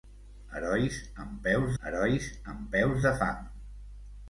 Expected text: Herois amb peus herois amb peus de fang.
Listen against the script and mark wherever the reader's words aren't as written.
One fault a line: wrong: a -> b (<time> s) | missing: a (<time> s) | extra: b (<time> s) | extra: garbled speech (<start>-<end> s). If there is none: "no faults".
no faults